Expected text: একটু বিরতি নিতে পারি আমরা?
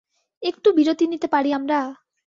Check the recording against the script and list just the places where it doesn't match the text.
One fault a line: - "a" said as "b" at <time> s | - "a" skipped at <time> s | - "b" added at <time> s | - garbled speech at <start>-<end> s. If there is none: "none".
none